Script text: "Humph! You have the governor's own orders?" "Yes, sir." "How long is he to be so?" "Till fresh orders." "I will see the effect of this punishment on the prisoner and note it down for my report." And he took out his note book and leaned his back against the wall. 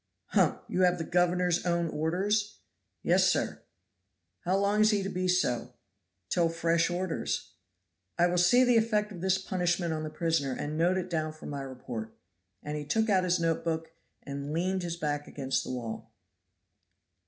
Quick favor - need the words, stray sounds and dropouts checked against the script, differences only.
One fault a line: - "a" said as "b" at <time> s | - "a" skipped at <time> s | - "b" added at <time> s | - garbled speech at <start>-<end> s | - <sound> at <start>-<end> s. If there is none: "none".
none